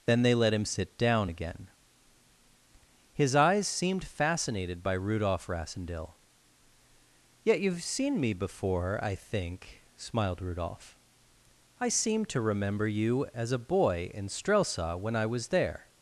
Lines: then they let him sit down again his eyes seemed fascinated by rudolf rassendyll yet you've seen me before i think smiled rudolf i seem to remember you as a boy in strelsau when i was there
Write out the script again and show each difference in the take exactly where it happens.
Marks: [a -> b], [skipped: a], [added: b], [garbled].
then they let him sit down again his eyes seemed fascinated by rudolf rassendyll yet you've seen me before i think smiled rudolf i seem to remember you as a boy in strelsau when i was there